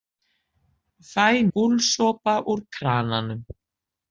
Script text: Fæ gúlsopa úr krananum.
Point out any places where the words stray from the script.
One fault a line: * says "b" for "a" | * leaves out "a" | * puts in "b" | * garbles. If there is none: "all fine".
all fine